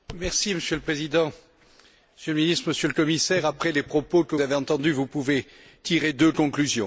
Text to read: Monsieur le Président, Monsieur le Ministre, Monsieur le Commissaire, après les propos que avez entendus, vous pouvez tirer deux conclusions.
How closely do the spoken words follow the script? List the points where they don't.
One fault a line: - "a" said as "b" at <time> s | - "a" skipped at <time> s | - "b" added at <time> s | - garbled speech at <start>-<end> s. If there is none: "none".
none